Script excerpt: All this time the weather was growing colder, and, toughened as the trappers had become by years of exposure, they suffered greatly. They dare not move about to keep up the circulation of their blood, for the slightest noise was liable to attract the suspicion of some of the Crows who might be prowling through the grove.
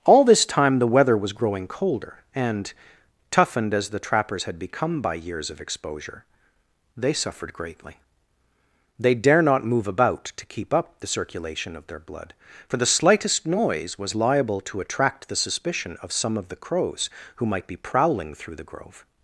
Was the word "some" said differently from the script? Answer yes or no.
no